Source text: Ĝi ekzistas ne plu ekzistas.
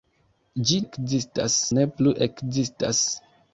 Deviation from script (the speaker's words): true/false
false